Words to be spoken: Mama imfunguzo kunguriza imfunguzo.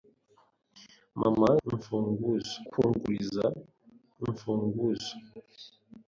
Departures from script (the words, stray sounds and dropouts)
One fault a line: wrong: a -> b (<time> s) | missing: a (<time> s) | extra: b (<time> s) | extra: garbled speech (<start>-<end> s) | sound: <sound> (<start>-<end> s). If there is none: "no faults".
no faults